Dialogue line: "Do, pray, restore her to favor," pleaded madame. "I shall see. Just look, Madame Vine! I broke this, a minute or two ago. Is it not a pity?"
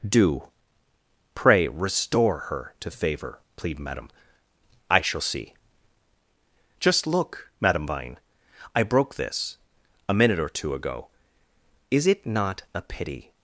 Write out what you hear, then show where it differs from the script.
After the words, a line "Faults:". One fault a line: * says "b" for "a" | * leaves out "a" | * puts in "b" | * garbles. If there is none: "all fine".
"Do, pray, restore her to favor," plead madame. "I shall see. Just look, Madame Vine! I broke this, a minute or two ago. Is it not a pity?"
Faults:
* says "plead" for "pleaded"